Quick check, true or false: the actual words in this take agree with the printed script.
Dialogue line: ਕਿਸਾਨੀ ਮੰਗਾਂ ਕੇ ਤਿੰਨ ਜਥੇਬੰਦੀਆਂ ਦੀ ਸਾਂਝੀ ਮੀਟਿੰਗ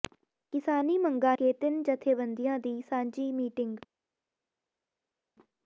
true